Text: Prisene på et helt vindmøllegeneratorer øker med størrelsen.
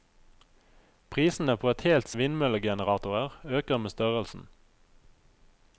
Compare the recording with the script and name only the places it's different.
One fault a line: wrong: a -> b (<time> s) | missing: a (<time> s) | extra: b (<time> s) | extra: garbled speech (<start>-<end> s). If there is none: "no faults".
no faults